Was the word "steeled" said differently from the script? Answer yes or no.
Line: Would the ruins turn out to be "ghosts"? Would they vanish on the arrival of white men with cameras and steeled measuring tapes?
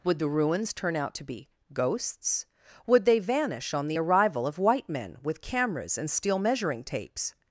yes